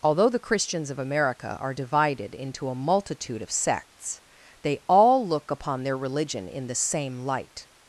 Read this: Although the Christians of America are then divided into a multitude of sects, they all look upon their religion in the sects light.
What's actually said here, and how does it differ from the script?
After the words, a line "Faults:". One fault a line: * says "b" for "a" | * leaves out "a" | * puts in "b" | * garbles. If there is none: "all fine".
Although the Christians of America are divided into a multitude of sects, they all look upon their religion in the same light.
Faults:
* leaves out "then"
* says "same" for "sects"